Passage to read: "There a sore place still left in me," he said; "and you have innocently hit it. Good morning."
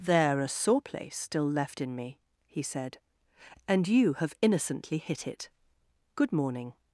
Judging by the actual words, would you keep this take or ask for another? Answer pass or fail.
pass